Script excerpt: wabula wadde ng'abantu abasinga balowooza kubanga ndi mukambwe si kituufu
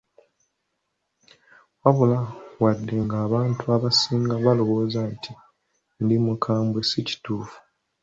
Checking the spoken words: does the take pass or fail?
fail